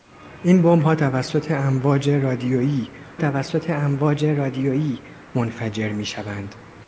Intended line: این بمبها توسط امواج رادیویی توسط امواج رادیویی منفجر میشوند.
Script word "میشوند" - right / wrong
right